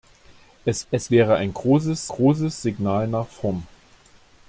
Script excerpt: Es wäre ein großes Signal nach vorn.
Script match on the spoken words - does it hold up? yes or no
no